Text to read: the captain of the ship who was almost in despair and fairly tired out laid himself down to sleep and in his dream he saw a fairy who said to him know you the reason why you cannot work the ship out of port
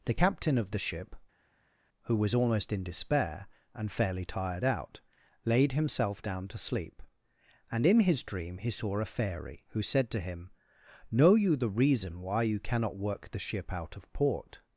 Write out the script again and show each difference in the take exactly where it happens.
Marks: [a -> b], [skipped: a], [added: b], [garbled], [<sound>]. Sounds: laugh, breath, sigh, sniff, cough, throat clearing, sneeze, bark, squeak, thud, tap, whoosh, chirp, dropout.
the captain of the ship who was almost in despair and fairly tired out laid himself down to sleep and in his dream he saw a fairy who said to him know you the reason why you cannot work the ship out of port